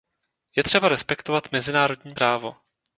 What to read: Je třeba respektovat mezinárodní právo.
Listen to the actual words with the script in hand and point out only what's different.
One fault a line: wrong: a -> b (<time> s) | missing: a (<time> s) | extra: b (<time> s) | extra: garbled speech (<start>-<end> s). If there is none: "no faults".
no faults